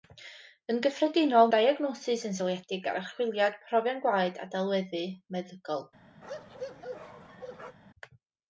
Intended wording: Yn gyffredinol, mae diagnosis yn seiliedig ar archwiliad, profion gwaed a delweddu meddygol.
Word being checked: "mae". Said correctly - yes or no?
no